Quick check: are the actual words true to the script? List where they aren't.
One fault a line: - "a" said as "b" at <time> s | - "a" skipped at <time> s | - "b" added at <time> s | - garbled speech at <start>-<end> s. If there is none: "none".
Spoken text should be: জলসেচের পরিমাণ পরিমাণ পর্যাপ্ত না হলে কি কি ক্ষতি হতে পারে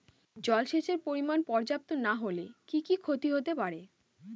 - "পরিমাণ" skipped at 1.4 s